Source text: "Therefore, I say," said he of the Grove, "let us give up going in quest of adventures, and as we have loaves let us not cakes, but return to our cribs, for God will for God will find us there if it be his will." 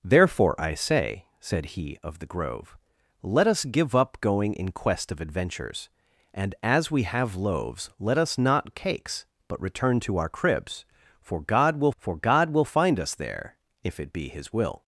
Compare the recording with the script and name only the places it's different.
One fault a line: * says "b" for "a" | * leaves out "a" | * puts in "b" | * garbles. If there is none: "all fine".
all fine